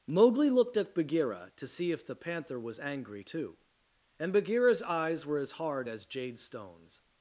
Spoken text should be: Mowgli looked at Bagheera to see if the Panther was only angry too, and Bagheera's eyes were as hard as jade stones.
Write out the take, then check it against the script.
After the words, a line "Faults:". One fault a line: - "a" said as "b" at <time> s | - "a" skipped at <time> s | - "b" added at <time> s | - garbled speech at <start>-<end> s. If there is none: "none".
Mowgli looked at Bagheera to see if the Panther was angry too, and Bagheera's eyes were as hard as jade stones.
Faults:
- "only" skipped at 2.8 s